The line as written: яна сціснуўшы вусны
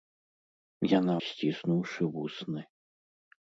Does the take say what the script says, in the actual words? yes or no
yes